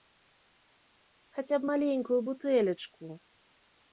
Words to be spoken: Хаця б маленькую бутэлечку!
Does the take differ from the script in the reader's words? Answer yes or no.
no